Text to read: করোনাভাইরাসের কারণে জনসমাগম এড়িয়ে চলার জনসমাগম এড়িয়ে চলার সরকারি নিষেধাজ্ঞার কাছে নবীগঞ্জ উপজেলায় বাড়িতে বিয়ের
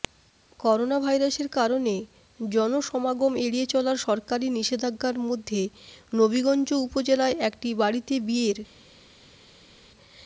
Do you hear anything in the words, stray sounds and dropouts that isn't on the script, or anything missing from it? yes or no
yes